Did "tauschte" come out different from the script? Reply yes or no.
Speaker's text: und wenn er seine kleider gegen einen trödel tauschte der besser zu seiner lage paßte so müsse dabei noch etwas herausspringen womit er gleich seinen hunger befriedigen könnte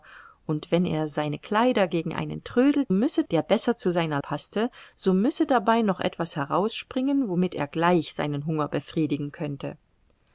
yes